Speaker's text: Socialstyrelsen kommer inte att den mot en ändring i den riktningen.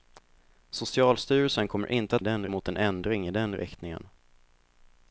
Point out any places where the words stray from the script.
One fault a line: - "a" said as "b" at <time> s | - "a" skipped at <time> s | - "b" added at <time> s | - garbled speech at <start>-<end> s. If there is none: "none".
none